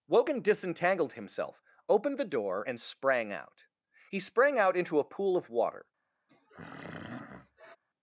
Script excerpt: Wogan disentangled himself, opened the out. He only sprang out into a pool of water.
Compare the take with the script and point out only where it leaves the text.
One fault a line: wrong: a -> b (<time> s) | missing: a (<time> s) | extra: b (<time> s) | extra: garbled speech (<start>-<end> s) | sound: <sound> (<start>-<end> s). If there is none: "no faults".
extra: door and sprang (2.2 s)
missing: only (4.2 s)
sound: throat clearing (6.3-7.8 s)